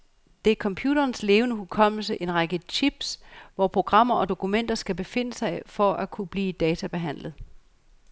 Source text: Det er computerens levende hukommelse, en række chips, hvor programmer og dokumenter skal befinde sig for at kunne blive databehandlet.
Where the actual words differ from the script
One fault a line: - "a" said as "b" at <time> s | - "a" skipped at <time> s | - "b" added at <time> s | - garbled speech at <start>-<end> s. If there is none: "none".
none